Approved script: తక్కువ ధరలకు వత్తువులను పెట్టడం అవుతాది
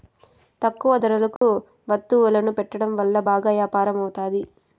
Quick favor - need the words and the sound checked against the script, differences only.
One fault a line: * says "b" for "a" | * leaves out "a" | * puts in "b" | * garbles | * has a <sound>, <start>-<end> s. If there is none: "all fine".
* has a dropout, 1.4-1.4 s
* puts in "వల్ల బాగా యాపారం"